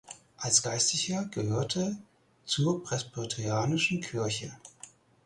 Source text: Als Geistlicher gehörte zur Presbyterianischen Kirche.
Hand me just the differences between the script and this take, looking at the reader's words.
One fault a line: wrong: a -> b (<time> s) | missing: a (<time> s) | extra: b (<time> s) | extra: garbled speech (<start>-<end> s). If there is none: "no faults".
no faults